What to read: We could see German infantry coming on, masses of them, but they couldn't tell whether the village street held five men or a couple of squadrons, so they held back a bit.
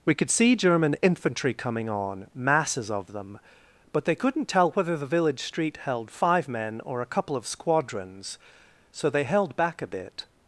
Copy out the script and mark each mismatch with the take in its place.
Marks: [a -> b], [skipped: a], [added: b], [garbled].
We could see German infantry coming on, masses of them, but they couldn't tell whether the village street held five men or a couple of squadrons, so they held back a bit.